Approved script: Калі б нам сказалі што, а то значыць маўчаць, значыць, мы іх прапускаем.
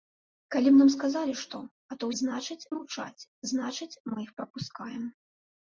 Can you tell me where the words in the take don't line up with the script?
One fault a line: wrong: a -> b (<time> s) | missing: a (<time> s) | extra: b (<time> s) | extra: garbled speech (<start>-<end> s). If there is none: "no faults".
no faults